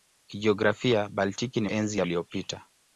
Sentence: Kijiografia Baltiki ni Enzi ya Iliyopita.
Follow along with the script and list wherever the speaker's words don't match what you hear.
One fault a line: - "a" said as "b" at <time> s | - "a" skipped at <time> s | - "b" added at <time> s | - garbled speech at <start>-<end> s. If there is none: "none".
none